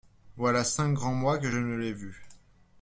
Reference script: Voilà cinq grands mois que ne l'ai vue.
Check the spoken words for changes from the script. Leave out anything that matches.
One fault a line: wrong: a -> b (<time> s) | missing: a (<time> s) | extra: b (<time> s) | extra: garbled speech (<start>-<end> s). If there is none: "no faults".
no faults